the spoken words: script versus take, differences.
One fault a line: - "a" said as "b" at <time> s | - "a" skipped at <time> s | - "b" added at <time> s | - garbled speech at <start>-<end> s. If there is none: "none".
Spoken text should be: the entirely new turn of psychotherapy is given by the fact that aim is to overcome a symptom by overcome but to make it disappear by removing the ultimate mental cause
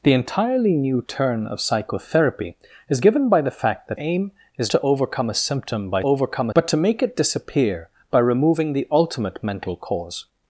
none